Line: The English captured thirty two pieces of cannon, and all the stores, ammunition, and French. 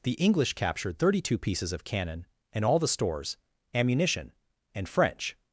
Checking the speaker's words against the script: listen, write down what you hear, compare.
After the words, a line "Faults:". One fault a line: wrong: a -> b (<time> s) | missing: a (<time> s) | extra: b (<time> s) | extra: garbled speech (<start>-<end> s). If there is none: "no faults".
The English captured thirty two pieces of cannon, and all the stores, ammunition, and French.
Faults:
no faults